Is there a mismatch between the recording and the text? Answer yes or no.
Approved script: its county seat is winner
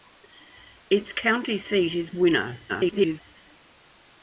yes